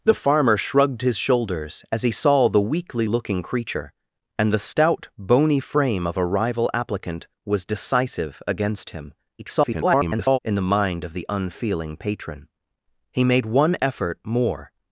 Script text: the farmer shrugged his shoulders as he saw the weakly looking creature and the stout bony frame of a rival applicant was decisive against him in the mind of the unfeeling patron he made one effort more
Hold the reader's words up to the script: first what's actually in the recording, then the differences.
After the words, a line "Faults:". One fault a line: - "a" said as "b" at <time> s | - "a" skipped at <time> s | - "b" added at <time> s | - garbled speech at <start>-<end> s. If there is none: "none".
the farmer shrugged his shoulders as he saw the weakly looking creature and the stout bony frame of a rival applicant was decisive against him [garbled] in the mind of the unfeeling patron he made one effort more
Faults:
- garbled speech at 9.4-10.4 s